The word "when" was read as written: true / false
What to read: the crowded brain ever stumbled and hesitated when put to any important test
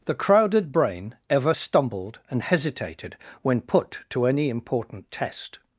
true